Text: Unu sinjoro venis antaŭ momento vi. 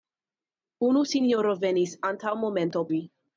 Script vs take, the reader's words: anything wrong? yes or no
no